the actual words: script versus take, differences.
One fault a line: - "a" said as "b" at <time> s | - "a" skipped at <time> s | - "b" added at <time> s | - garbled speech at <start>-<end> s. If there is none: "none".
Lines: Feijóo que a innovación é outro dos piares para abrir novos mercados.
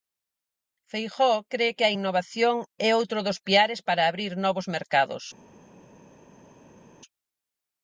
- "cre" added at 1.5 s